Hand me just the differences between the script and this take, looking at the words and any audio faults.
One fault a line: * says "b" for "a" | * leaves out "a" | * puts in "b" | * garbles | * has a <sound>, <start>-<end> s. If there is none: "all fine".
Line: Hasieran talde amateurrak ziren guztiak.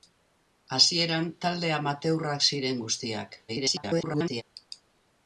* garbles